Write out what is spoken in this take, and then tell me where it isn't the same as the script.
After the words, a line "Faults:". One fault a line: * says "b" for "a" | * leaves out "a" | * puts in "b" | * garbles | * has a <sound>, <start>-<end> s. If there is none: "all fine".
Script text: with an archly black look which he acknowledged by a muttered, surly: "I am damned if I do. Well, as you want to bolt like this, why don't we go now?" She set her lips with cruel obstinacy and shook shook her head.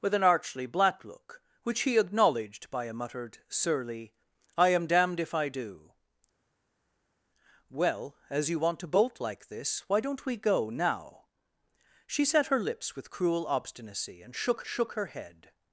with an archly black look which he acknowledged by a muttered, surly: "I am damned if I do. Well, as you want to bolt like this, why don't we go now?" She set her lips with cruel obstinacy and shook shook her head.
Faults:
all fine